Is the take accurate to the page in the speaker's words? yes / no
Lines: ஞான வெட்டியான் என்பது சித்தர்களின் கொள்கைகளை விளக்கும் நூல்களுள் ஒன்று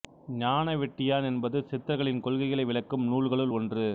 yes